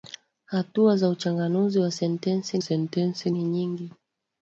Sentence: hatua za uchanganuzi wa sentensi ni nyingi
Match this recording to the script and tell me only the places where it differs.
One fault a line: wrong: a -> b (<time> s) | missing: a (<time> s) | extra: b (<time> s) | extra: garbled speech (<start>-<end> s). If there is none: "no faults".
extra: sentensi (2.6 s)